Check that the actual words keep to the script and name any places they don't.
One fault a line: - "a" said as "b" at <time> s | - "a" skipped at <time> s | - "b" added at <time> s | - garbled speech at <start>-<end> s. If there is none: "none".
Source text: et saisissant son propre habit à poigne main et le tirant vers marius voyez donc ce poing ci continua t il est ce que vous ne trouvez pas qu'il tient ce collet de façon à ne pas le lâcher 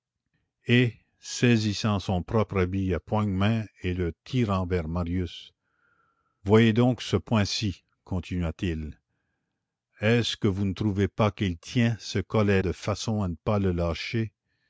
none